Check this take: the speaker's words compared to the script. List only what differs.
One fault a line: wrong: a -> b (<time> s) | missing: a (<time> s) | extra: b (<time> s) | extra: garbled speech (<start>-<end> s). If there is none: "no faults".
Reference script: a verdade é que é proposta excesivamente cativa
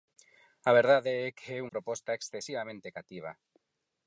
no faults